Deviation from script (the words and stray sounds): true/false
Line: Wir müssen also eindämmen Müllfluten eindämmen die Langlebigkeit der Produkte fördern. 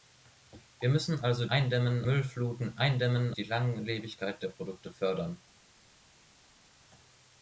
false